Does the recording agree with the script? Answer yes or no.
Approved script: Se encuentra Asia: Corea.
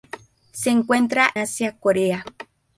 yes